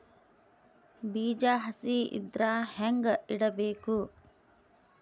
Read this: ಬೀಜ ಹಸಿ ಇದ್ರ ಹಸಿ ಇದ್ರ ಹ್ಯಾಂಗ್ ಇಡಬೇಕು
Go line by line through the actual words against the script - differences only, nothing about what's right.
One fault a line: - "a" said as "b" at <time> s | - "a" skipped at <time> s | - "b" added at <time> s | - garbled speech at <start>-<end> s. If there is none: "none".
- "ಹಸಿ ಇದ್ರ" skipped at 2.4 s